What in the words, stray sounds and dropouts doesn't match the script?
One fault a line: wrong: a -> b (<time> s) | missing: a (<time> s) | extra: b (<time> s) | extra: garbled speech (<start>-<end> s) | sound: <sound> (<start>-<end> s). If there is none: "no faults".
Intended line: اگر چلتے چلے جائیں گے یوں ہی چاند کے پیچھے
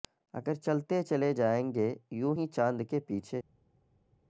no faults